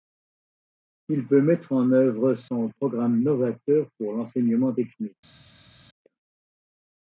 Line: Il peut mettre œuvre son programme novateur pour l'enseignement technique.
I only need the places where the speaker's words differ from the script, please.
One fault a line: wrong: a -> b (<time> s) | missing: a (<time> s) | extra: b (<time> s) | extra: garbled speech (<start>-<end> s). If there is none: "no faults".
extra: en (1.7 s)